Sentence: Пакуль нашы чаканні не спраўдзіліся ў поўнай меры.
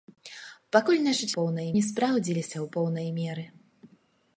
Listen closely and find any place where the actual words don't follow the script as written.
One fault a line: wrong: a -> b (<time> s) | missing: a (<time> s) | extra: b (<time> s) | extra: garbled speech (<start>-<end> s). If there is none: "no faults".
wrong: чаканні -> поўнай (1.4 s)